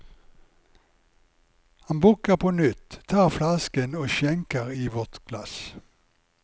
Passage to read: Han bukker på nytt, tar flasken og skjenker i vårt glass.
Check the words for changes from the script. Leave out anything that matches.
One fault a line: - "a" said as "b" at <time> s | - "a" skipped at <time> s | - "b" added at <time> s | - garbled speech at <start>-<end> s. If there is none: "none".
none